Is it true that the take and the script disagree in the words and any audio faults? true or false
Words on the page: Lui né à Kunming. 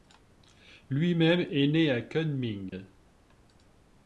true